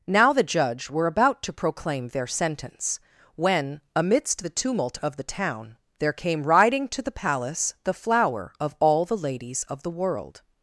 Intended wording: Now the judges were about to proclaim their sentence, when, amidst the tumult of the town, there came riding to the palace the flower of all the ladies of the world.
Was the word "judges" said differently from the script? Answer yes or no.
yes